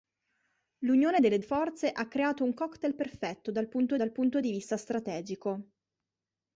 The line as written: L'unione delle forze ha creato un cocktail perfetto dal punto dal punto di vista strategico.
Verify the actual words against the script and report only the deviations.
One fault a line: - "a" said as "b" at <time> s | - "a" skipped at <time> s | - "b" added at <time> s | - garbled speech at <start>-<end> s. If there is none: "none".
none